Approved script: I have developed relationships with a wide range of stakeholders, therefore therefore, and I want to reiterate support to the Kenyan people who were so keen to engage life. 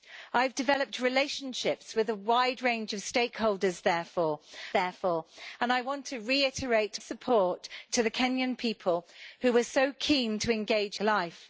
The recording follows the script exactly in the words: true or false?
true